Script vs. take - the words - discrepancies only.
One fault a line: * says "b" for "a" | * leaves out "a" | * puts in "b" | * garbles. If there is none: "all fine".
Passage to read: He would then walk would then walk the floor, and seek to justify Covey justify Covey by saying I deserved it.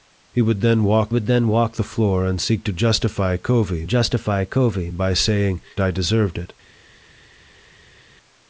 all fine